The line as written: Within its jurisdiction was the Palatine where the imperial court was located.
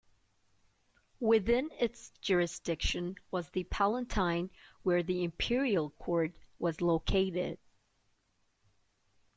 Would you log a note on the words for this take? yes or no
no